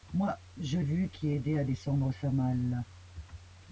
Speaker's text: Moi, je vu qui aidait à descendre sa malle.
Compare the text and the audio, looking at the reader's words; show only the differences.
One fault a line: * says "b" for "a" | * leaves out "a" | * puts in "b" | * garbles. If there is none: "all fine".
all fine